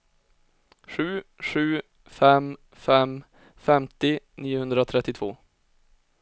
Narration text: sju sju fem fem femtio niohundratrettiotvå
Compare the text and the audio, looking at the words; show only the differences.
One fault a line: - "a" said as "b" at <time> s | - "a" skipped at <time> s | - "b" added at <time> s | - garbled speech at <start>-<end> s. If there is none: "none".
none